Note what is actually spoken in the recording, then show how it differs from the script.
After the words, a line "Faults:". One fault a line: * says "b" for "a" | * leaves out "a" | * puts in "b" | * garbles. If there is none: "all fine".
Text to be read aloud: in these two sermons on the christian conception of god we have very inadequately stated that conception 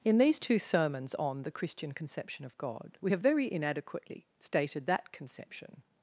in these two sermons on the christian conception of god we have very inadequately stated that conception
Faults:
all fine